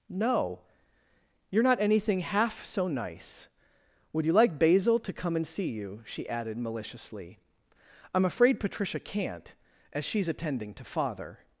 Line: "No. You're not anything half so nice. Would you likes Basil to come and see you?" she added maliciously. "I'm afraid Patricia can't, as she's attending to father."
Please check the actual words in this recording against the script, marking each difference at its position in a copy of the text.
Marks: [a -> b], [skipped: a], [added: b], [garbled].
"No. You're not anything half so nice. Would you [likes -> like] Basil to come and see you?" she added maliciously. "I'm afraid Patricia can't, as she's attending to father."